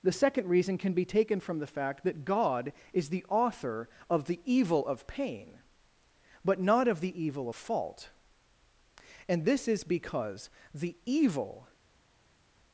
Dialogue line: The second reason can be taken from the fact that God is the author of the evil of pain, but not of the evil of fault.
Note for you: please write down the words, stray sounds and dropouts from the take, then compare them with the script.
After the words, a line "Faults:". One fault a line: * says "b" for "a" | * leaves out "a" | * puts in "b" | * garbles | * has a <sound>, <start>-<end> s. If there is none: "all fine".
The second reason can be taken from the fact that God is the author of the evil of pain, but not of the evil of fault. And this is because the evil
Faults:
* puts in "And this is because the evil"